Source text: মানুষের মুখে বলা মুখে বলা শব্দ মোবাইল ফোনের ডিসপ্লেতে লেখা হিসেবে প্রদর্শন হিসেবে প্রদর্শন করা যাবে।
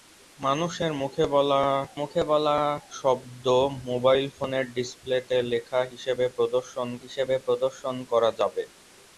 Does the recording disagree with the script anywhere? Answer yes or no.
no